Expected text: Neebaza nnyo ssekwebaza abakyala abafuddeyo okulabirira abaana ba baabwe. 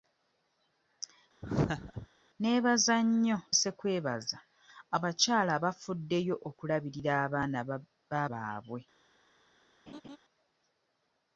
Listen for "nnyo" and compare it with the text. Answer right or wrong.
right